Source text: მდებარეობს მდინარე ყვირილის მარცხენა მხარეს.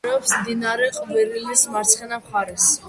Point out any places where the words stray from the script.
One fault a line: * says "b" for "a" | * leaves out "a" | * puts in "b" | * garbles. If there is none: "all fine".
all fine